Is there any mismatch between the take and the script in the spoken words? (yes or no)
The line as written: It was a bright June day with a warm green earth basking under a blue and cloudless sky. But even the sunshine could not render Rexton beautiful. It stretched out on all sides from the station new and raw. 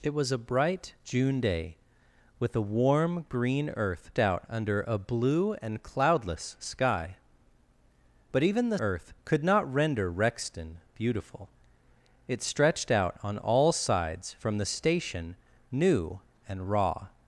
yes